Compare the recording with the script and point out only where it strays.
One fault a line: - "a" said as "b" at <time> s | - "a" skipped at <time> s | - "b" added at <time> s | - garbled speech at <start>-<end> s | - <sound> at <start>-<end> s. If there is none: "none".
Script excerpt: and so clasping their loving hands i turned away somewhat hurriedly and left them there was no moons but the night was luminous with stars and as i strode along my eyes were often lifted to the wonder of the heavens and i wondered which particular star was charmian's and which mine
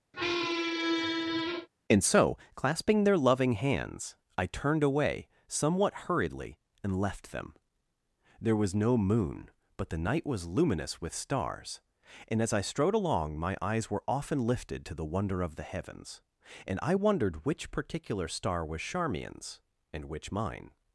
- squeak at 0.1-1.7 s
- "moons" said as "moon" at 9.0 s